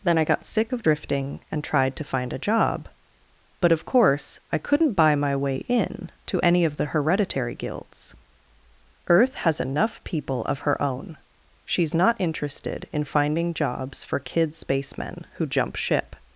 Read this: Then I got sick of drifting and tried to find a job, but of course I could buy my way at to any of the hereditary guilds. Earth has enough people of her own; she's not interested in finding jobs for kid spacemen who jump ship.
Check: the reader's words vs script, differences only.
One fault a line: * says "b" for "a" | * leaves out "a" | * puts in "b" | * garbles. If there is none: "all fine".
* says "couldn't" for "could"
* says "in" for "at"